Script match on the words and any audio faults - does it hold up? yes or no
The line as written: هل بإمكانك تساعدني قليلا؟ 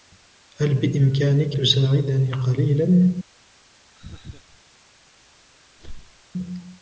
no